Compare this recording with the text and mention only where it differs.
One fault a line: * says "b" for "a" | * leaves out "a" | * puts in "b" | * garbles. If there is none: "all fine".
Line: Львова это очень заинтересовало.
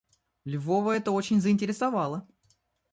all fine